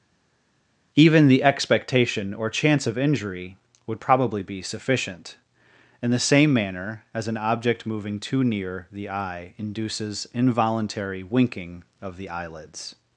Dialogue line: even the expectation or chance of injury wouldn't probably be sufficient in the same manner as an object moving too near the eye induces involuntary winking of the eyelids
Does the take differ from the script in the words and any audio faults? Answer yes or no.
yes